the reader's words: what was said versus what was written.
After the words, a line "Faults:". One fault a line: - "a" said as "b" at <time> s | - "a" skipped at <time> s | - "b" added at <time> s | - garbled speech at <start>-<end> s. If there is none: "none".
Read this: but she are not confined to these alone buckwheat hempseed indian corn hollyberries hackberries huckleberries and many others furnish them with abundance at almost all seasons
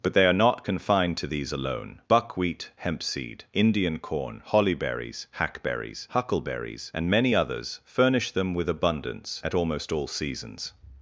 but they are not confined to these alone buckwheat hempseed indian corn hollyberries hackberries huckleberries and many others furnish them with abundance at almost all seasons
Faults:
- "she" said as "they" at 0.1 s